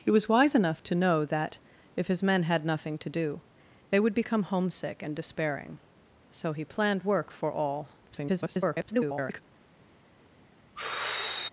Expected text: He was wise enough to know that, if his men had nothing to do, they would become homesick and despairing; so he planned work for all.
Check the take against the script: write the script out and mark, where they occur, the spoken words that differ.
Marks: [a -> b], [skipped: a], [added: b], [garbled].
He was wise enough to know that, if his men had nothing to do, they would become homesick and despairing; so he planned work for all. [garbled]